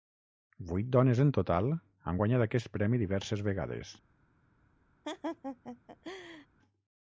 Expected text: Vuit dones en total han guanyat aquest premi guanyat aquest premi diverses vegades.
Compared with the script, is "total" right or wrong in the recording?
right